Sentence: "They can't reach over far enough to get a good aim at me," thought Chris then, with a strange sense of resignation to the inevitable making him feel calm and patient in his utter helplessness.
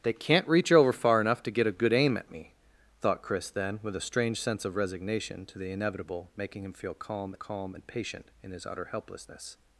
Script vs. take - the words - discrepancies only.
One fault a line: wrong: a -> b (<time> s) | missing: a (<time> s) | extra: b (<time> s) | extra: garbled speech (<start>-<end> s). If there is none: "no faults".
extra: calm (7.3 s)